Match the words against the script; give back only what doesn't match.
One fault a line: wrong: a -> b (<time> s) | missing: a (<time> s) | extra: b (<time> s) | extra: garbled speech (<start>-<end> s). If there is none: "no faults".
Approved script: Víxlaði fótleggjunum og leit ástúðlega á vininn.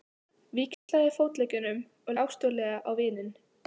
missing: leit (2.2 s)